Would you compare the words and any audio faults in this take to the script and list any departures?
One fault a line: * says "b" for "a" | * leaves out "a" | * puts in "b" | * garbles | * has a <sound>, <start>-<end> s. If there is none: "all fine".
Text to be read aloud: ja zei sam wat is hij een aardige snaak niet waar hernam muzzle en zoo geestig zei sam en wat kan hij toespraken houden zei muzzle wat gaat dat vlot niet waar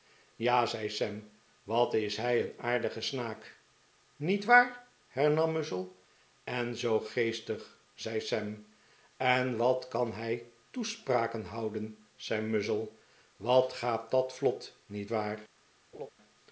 * has a laugh, 15.9-16.1 s